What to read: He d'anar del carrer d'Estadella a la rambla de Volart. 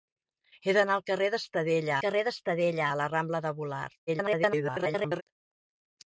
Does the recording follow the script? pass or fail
fail